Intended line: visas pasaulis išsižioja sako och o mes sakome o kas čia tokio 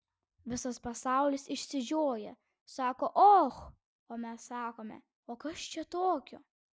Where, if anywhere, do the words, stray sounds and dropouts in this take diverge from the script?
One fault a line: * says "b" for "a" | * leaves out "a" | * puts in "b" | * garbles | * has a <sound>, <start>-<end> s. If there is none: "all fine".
all fine